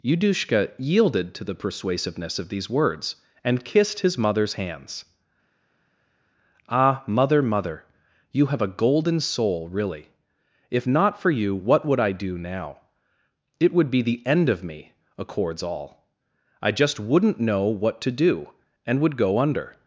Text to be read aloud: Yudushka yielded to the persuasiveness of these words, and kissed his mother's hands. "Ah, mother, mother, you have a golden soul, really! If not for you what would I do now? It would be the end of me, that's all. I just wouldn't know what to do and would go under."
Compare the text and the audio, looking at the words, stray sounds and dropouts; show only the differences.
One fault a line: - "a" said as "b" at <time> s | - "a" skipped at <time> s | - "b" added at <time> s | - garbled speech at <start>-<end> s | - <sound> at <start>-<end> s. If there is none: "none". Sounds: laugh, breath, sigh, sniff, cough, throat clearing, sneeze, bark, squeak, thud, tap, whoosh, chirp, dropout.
- "that's" said as "accords" at 15.2 s